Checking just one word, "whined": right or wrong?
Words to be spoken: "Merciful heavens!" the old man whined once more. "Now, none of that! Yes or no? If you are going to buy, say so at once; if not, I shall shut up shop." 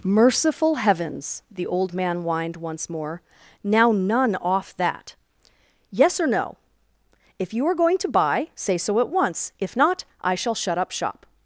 right